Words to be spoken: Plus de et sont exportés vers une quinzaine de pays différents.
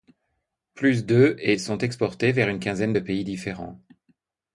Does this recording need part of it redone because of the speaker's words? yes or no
no